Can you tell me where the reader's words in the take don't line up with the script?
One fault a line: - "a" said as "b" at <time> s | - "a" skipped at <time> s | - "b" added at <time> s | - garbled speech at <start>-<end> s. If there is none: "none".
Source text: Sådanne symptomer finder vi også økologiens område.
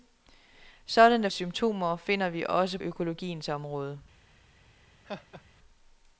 none